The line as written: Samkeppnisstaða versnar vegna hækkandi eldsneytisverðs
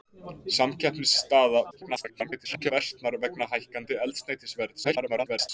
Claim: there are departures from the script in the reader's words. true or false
true